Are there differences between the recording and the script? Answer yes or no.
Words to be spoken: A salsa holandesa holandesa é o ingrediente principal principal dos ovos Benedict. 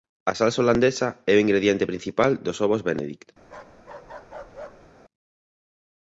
yes